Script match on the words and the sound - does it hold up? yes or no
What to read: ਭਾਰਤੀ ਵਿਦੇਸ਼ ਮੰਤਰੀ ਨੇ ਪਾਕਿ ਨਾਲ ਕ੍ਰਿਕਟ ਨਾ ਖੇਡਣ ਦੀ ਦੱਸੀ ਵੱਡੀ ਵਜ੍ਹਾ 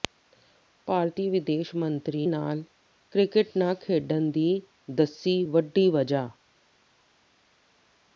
no